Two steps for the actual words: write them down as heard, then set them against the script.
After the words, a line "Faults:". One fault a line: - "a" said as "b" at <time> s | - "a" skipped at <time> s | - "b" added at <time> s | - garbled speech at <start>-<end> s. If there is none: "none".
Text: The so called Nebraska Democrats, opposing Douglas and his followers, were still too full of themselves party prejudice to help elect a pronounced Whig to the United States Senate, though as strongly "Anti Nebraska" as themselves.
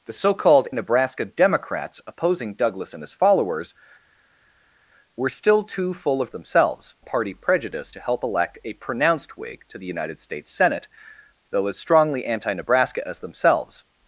The so called Nebraska Democrats, opposing Douglas and his followers, were still too full of themselves party prejudice to help elect a pronounced Whig to the United States Senate, though as strongly "Anti Nebraska" as themselves.
Faults:
none